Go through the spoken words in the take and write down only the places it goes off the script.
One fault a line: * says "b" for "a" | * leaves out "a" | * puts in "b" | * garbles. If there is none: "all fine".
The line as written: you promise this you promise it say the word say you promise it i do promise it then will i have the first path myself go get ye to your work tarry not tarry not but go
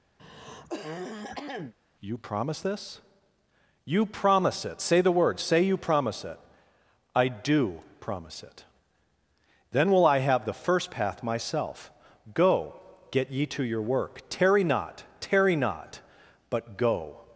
all fine